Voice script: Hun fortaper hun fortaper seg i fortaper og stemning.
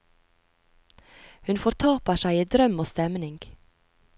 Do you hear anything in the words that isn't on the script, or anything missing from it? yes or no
yes